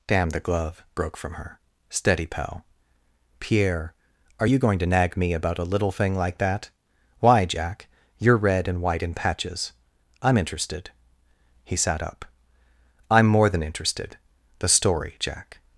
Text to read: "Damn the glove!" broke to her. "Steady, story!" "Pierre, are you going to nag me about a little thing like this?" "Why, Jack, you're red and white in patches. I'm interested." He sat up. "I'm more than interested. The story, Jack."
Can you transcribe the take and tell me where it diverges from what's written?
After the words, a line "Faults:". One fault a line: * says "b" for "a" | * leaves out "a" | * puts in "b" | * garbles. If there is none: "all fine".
"Damn the glove!" broke from her. "Steady, pal!" "Pierre, are you going to nag me about a little thing like that?" "Why, Jack, you're red and white in patches. I'm interested." He sat up. "I'm more than interested. The story, Jack."
Faults:
* says "from" for "to"
* says "pal" for "story"
* says "that" for "this"